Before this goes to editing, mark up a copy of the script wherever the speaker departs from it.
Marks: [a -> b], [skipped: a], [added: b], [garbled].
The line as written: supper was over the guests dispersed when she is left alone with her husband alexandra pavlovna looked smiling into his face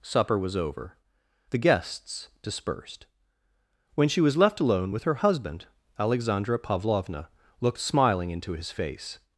supper was over the guests dispersed when she [is -> was] left alone with her husband alexandra pavlovna looked smiling into his face